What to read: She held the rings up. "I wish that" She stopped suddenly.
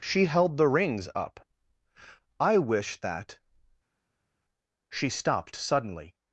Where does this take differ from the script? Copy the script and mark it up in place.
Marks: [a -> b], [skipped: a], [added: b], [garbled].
She held the rings up. "I wish that" She stopped suddenly.